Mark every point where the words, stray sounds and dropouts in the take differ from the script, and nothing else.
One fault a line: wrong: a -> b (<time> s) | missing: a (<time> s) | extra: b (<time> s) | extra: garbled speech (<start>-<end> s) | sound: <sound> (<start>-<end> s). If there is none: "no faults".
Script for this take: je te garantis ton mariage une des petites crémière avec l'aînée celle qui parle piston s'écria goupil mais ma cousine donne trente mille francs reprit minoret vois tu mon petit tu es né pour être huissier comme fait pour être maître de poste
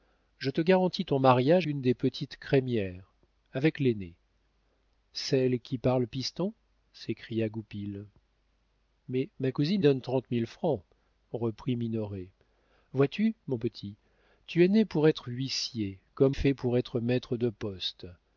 no faults